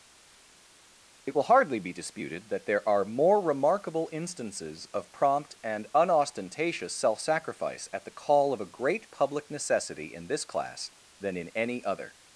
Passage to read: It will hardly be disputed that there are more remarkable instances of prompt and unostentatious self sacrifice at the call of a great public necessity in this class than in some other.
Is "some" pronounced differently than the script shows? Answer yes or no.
yes